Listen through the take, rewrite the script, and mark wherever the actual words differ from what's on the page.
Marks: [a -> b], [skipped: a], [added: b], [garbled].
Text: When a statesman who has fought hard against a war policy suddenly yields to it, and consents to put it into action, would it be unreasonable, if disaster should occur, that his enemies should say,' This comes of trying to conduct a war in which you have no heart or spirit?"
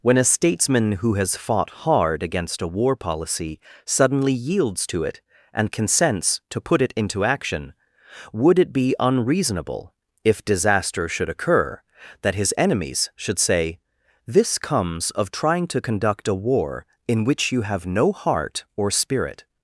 When a statesman who has fought hard against a war policy suddenly yields to it, and consents to put it into action, would it be unreasonable, if disaster should occur, that his enemies should say,' This comes of trying to conduct a war in which you have no heart or spirit?"